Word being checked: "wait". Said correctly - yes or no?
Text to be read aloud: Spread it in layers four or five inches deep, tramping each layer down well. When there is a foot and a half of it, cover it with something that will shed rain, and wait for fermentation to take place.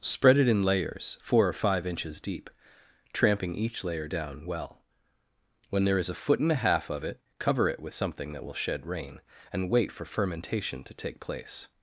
yes